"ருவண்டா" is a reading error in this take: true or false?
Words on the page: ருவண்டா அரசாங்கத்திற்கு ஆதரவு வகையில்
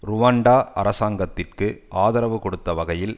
false